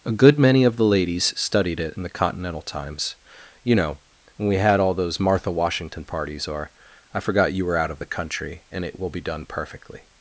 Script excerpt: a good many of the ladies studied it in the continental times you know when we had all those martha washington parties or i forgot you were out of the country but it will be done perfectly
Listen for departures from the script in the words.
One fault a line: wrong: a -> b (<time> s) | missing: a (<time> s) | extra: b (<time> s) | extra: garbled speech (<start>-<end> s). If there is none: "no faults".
wrong: but -> and (8.7 s)